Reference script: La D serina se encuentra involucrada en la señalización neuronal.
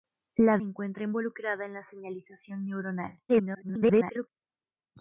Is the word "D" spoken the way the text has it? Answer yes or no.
no